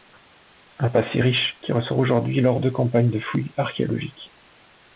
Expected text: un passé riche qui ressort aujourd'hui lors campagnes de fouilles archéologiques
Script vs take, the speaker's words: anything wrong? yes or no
yes